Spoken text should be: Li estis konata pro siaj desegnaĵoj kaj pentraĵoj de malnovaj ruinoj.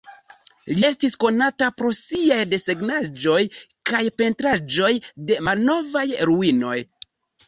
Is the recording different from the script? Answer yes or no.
no